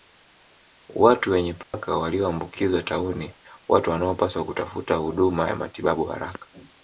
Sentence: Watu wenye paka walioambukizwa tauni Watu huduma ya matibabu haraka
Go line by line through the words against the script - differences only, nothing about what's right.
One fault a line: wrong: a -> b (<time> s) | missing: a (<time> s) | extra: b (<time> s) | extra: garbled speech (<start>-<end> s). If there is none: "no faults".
extra: wanaopaswa kutafuta (3.9 s)